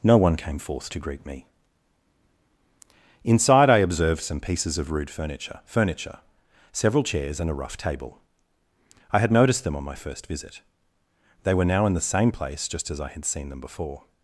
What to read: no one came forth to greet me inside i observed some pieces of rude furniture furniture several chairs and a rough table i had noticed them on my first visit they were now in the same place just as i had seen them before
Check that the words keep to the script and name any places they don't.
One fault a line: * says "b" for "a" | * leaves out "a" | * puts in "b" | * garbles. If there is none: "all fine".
all fine